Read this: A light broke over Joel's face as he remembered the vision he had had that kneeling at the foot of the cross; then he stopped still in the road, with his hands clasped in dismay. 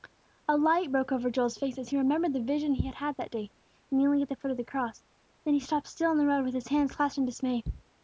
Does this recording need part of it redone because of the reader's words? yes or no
yes